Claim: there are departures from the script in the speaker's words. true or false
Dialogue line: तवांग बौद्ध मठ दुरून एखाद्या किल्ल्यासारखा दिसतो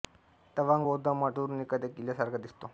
false